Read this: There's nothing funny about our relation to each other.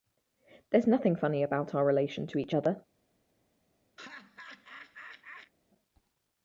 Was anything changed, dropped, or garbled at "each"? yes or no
no